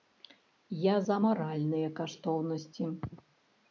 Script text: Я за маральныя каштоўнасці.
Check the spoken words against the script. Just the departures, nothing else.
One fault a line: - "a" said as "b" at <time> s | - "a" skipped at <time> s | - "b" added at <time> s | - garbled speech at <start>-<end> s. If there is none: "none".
none